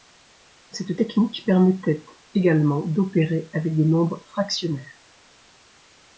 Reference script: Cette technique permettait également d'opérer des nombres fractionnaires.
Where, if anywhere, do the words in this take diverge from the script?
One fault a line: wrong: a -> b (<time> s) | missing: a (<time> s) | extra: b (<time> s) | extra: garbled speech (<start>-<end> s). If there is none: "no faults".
extra: avec (3.5 s)